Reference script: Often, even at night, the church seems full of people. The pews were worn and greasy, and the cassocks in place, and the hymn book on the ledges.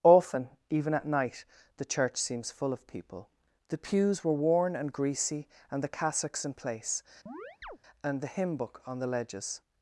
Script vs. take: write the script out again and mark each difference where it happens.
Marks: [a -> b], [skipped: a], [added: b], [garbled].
Often, even at night, the church seems full of people. The pews were worn and greasy, and the cassocks in place, and the hymn book on the ledges.